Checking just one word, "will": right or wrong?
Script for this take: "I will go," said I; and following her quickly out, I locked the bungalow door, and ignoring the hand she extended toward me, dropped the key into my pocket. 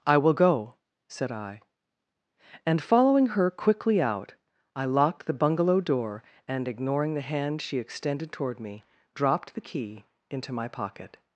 right